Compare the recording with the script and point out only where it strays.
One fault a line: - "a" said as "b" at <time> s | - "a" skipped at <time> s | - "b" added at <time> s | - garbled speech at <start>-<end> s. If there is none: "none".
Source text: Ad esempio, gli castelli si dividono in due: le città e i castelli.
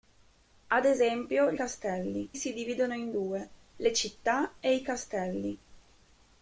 none